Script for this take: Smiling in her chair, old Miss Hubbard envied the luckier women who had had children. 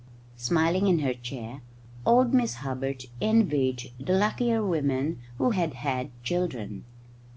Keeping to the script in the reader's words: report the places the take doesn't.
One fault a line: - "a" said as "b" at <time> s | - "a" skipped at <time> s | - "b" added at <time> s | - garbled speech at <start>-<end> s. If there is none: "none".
none